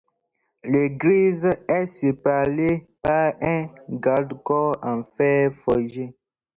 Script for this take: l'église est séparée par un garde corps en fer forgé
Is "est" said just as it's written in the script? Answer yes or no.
yes